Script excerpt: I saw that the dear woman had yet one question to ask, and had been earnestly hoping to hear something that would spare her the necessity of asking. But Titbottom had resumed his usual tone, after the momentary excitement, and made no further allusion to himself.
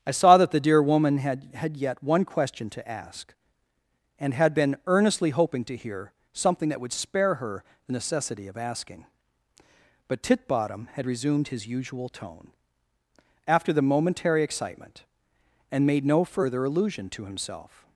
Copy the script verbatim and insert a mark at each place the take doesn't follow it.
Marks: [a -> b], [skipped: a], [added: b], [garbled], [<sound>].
I saw that the dear woman had [added: had] yet one question to ask, and had been earnestly hoping to hear something that would spare her the necessity of asking. But Titbottom had resumed his usual tone, after the momentary excitement, and made no further allusion to himself.